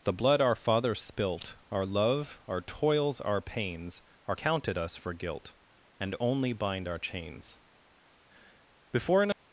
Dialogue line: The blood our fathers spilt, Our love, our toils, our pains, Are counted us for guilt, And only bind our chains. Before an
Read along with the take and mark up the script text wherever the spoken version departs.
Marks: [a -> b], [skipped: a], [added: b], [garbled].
The blood our fathers spilt, Our love, our toils, our pains, Are counted us for guilt, And only bind our chains. Before an